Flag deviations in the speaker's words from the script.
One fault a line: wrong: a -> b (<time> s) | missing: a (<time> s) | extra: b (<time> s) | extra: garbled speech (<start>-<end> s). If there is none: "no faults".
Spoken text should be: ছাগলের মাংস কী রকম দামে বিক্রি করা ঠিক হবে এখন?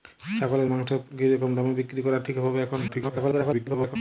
extra: garbled speech (2.9-4.0 s)